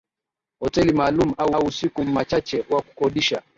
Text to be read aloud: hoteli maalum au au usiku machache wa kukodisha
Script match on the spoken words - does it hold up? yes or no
yes